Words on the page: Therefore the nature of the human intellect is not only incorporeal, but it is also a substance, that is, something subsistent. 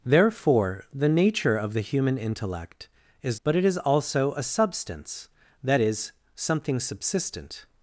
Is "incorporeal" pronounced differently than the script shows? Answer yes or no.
yes